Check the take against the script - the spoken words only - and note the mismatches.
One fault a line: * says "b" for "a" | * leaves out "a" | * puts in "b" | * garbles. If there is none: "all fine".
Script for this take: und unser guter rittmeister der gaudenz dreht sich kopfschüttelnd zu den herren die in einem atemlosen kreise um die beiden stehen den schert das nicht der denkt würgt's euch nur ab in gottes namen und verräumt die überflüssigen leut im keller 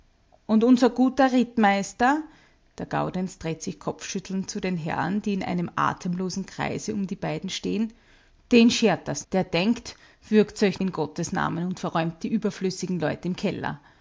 * leaves out "nicht"
* leaves out "nur ab"